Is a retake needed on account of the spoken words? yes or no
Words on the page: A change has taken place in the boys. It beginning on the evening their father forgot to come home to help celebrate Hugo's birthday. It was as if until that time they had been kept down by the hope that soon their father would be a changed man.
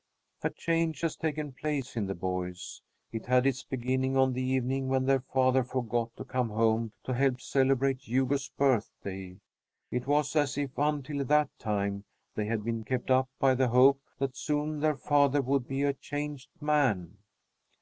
yes